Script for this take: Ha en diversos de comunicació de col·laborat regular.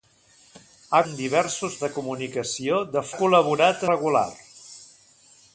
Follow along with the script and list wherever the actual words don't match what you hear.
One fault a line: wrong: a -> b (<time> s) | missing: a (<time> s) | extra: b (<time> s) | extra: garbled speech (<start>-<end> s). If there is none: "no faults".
no faults